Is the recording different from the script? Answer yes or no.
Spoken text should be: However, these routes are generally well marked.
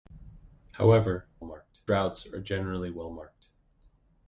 yes